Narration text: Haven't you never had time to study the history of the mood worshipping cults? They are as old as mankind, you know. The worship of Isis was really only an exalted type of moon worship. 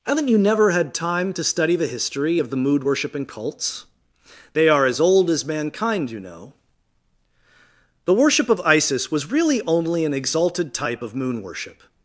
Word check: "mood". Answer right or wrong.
right